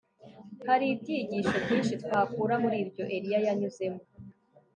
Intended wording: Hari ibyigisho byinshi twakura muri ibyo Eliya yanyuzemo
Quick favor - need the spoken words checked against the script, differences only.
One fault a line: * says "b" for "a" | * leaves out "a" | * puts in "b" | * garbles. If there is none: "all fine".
all fine